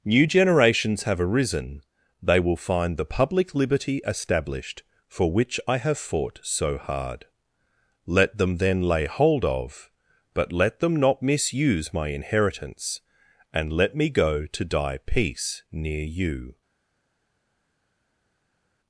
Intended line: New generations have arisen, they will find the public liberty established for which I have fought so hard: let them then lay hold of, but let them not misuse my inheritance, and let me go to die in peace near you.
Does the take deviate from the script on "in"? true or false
true